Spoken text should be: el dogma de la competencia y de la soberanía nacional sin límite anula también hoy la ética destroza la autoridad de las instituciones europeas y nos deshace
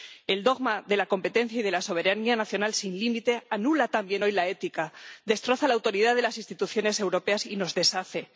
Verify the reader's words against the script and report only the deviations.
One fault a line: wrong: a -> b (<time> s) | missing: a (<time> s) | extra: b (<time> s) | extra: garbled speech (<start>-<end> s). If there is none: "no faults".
no faults